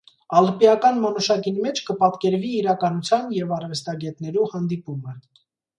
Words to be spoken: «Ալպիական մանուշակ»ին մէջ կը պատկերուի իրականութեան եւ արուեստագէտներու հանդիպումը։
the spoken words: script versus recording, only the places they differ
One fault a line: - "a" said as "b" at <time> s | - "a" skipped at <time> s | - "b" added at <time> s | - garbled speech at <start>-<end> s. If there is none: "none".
none